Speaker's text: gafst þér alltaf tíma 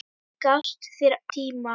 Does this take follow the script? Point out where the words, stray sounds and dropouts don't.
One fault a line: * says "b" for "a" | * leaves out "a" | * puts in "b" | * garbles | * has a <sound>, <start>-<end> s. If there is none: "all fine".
* has a dropout, 0.6-0.6 s
* leaves out "alltaf"